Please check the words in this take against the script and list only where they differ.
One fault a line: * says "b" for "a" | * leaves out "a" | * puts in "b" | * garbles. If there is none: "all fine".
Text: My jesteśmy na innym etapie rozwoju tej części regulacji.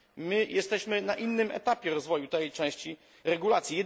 all fine